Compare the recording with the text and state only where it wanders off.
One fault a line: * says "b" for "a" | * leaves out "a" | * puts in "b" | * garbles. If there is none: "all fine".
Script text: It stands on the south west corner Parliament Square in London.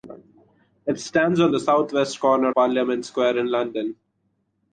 all fine